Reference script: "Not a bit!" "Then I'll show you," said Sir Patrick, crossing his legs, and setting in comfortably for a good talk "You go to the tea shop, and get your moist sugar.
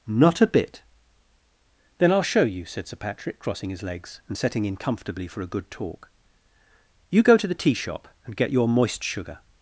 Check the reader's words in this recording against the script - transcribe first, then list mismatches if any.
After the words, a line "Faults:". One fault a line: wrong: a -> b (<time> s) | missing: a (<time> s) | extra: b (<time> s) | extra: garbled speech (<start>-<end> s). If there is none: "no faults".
"Not a bit!" "Then I'll show you," said Sir Patrick, crossing his legs, and setting in comfortably for a good talk "You go to the tea shop, and get your moist sugar.
Faults:
no faults